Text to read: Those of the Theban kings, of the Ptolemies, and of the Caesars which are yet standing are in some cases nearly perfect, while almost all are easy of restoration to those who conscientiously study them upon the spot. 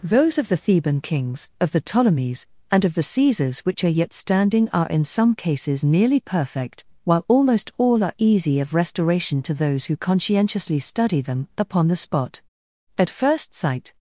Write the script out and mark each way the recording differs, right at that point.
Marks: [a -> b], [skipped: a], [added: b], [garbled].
Those of the Theban kings, of the Ptolemies, and of the Caesars which are yet standing are in some cases nearly perfect, while almost all are easy of restoration to those who conscientiously study them upon the spot. [added: At first sight]